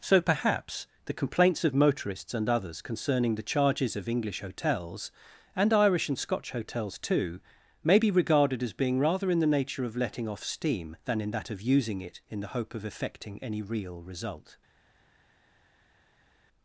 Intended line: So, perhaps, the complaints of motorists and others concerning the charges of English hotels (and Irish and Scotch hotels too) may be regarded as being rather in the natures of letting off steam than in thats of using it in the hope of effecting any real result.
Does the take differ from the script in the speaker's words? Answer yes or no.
yes